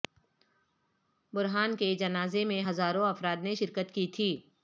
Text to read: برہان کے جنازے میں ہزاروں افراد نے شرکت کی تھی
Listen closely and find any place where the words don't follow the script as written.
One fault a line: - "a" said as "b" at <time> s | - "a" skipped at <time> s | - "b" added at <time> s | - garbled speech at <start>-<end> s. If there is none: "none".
none